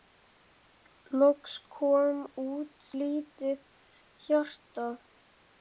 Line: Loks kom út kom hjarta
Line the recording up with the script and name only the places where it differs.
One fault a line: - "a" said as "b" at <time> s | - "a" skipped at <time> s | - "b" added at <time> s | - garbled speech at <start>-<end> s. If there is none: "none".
- "kom" said as "lítið" at 3.0 s